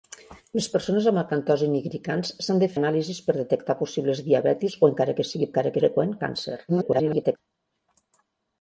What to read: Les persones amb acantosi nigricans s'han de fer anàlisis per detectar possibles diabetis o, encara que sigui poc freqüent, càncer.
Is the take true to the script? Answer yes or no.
no